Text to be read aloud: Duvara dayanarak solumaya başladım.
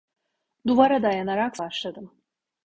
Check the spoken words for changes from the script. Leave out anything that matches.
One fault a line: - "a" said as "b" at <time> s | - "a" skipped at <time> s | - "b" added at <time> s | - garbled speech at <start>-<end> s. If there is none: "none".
- "solumaya" skipped at 1.6 s